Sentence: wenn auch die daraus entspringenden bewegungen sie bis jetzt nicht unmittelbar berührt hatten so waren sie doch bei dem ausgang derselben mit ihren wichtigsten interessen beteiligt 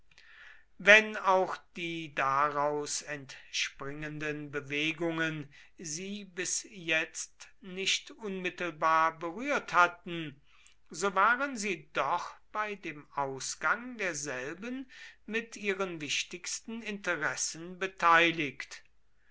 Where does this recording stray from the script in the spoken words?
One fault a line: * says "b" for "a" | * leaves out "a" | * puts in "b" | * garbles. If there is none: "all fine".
all fine